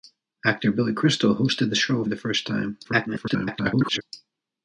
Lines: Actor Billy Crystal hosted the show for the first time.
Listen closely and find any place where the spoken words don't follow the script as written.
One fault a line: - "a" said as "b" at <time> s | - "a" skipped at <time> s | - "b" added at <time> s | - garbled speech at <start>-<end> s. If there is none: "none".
- "for" skipped at 2.0 s
- garbled speech at 2.8-4.0 s